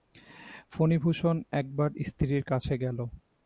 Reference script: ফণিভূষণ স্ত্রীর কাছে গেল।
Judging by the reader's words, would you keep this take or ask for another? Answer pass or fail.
fail